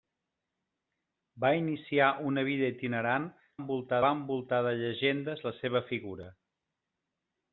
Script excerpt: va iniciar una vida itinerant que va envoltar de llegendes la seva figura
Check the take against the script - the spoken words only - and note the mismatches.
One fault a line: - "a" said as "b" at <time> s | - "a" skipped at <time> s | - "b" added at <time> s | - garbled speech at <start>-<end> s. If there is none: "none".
- "que" said as "envoltar" at 3.6 s